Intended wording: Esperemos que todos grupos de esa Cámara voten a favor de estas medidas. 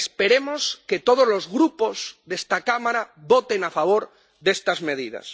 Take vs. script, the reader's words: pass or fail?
fail